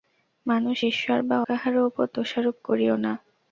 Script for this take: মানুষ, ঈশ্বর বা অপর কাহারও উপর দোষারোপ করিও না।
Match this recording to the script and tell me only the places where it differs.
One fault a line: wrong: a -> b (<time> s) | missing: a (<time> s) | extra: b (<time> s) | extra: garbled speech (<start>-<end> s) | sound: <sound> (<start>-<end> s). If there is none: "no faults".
missing: অপর (1.4 s)